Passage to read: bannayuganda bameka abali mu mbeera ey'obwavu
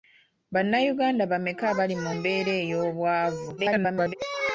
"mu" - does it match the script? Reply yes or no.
yes